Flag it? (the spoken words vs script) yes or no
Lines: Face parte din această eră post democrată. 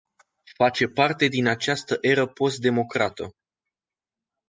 no